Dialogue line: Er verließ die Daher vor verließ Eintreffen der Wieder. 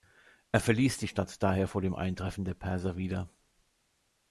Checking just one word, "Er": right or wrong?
right